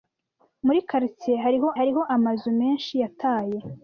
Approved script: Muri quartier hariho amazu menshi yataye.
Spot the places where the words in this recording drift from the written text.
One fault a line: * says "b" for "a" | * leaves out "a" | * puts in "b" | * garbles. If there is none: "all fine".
* puts in "hariho"